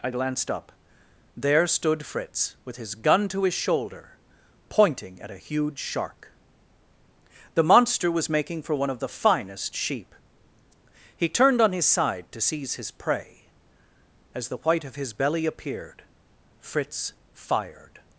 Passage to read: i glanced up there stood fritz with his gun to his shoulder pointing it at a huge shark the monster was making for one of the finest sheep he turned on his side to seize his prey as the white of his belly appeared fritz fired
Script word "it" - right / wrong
wrong